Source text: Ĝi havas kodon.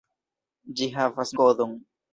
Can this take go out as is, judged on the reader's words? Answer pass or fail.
pass